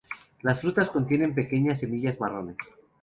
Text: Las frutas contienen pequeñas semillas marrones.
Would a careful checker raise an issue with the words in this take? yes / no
no